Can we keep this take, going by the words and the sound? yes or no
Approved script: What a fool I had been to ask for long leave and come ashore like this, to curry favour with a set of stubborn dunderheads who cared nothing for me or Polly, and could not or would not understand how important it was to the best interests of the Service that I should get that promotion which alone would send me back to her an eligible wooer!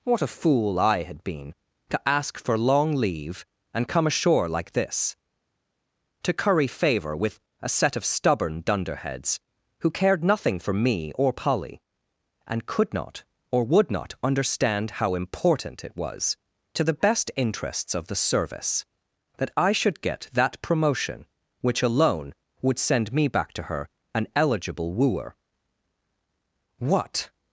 no